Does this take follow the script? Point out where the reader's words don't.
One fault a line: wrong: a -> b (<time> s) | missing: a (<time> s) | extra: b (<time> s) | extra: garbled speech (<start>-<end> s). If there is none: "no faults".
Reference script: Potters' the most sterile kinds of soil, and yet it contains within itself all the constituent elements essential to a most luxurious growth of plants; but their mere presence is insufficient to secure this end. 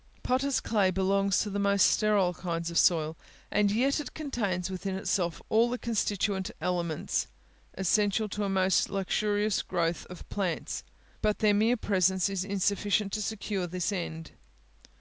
extra: clay belongs to (0.6 s)